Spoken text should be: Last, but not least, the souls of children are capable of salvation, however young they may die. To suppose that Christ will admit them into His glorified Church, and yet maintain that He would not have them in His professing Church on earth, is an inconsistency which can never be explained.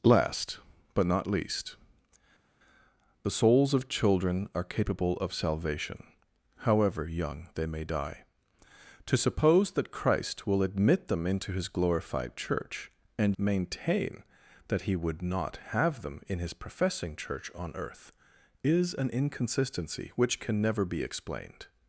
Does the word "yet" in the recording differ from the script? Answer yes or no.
yes